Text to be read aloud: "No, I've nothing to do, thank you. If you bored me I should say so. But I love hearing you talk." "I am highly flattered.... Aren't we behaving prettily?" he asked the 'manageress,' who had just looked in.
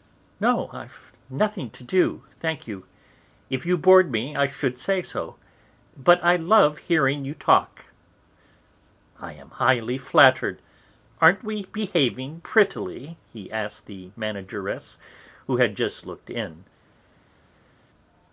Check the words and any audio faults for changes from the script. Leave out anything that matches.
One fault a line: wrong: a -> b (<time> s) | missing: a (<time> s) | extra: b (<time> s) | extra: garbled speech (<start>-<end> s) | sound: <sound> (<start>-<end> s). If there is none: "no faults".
no faults